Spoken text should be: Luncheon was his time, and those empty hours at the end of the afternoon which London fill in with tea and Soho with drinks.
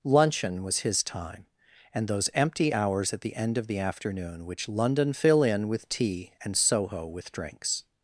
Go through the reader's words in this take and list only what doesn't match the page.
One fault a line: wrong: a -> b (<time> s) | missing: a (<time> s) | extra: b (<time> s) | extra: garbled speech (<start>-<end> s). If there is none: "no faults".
no faults